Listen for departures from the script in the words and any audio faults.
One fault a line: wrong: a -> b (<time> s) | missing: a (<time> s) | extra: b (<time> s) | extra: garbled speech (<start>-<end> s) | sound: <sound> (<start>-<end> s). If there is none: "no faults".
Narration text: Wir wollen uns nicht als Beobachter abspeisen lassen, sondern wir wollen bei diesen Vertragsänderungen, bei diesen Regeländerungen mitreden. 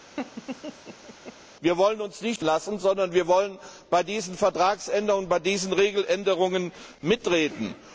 sound: laugh (0.2-1.4 s)
missing: als Beobachter abspeisen (2.4 s)